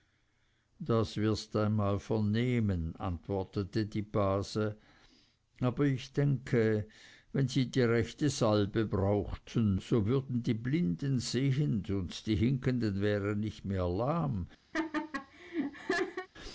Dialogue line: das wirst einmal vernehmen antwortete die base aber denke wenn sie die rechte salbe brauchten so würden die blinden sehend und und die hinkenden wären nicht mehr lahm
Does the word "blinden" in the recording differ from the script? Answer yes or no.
no